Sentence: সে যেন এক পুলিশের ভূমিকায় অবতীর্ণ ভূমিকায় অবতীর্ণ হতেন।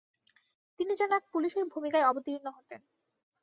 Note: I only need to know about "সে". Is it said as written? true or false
false